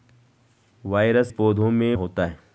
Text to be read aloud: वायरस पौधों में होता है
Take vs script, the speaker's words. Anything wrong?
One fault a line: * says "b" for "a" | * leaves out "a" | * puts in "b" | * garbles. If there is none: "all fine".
all fine